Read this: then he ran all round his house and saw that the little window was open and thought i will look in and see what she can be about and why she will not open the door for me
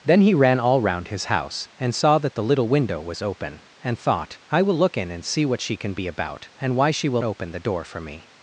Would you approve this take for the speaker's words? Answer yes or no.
no